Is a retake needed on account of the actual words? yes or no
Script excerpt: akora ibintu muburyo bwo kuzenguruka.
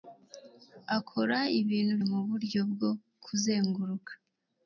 no